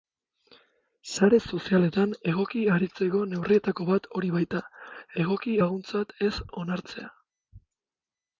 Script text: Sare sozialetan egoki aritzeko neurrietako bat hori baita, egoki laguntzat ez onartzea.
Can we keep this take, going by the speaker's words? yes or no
yes